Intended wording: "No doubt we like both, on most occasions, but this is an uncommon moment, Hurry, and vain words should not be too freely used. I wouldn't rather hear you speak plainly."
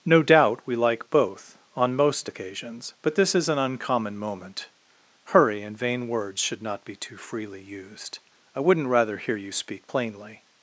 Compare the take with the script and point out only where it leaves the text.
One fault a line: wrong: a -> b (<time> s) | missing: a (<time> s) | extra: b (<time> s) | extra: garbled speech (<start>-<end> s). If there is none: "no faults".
no faults